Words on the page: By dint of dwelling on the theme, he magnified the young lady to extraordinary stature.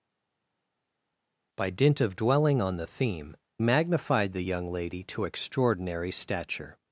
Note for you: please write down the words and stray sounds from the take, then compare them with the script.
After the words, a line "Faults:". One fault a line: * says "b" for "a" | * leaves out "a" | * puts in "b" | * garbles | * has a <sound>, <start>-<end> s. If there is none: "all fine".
By dint of dwelling on the theme, magnified the young lady to extraordinary stature.
Faults:
* leaves out "he"